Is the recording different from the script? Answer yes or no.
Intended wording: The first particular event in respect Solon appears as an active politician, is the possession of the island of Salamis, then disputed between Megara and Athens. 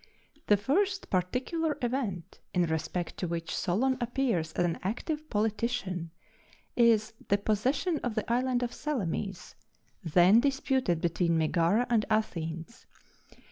yes